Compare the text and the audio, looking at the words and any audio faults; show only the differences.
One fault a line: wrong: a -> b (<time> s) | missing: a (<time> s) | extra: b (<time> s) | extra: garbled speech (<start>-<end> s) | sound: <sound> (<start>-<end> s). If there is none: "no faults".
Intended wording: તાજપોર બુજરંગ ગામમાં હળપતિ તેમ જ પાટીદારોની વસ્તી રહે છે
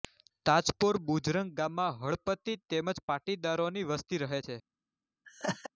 sound: laugh (5.2-5.7 s)